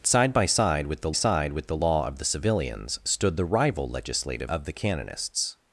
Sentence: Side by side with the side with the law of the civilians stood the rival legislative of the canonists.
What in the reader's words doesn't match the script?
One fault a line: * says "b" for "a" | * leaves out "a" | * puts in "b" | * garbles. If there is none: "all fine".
all fine